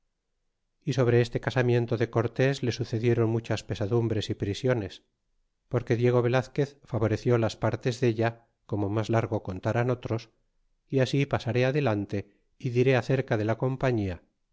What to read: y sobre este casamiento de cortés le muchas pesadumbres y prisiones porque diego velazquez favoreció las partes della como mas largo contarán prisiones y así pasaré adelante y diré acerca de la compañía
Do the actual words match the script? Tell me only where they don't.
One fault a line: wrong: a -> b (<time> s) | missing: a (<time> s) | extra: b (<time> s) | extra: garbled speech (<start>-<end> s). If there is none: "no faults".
extra: sucedieron (2.7 s)
wrong: prisiones -> otros (9.9 s)